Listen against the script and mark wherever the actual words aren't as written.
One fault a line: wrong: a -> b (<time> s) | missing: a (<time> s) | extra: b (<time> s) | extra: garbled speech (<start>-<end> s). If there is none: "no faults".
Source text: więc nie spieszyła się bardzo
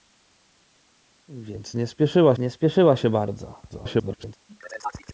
extra: nie spieszyła (2.4 s)
extra: garbled speech (3.7-4.4 s)